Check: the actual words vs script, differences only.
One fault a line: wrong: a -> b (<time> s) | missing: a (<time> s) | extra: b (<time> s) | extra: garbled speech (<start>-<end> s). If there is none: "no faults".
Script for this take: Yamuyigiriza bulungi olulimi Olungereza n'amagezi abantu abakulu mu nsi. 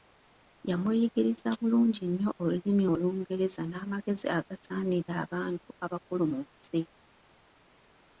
extra: nnyo (2.1 s)
extra: agasaanira (4.4 s)